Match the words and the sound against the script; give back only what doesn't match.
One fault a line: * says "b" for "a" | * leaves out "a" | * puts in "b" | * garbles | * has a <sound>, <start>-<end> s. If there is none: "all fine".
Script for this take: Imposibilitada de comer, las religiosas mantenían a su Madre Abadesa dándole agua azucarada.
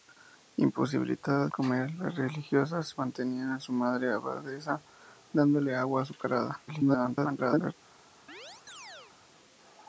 * leaves out "de"
* garbles
* has a chirp, 8.3-9.2 s